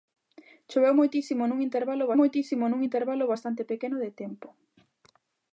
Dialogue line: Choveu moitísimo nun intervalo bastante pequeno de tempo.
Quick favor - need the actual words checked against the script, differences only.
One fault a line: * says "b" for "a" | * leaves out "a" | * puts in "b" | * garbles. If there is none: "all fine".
* puts in "moitísimo nun intervalo"